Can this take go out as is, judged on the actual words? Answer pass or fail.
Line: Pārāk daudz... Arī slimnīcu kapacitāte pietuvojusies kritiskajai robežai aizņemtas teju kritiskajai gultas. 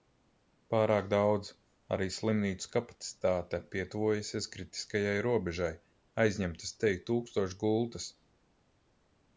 fail